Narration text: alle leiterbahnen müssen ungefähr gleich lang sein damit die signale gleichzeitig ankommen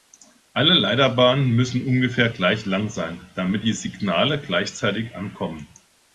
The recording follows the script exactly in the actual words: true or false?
true